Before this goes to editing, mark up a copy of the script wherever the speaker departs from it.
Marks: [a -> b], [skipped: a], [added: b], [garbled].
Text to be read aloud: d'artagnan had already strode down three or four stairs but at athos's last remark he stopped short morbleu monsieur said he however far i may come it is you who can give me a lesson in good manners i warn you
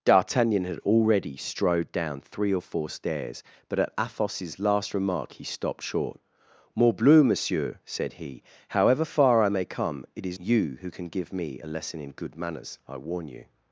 d'artagnan had already strode down three or four stairs but at athos's last remark he stopped short morbleu monsieur said he however far i may come it is you who can give me a lesson in good manners i warn you